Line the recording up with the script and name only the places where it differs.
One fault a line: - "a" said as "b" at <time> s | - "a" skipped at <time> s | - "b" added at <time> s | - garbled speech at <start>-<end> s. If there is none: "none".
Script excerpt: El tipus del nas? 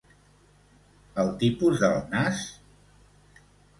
none